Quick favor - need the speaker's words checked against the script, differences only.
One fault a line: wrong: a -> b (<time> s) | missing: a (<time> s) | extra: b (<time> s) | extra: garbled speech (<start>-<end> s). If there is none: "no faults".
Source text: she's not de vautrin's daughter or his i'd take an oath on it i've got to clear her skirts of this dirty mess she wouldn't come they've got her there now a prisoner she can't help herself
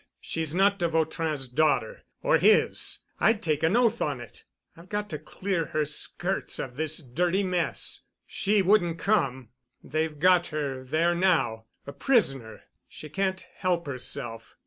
no faults